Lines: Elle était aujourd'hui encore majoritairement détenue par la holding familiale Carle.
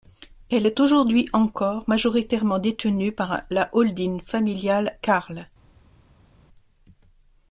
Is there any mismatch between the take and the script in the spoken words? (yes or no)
yes